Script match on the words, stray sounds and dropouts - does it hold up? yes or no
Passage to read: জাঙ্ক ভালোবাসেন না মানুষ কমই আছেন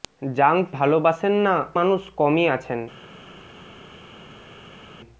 yes